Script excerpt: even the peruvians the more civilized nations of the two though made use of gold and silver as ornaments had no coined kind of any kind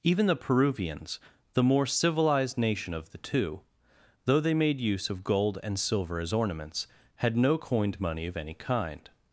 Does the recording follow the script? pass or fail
fail